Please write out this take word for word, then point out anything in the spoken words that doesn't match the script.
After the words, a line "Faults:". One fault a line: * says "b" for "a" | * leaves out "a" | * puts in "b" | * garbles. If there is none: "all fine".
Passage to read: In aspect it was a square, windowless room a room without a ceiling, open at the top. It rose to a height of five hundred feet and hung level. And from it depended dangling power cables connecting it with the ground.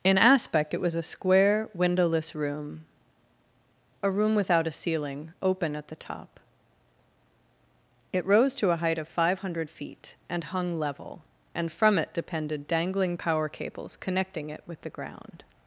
In aspect it was a square, windowless room a room without a ceiling, open at the top. It rose to a height of five hundred feet and hung level. And from it depended dangling power cables connecting it with the ground.
Faults:
all fine